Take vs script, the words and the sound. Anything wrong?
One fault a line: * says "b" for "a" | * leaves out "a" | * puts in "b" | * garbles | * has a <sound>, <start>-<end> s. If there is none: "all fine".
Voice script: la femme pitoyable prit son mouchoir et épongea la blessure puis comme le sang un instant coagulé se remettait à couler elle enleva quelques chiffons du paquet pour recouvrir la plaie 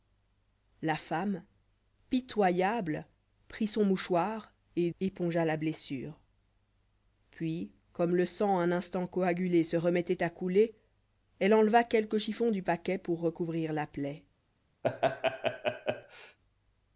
* has a laugh, 14.8-16.4 s